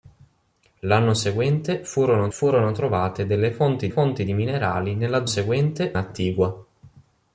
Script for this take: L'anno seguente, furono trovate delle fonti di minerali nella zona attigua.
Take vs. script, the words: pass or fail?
fail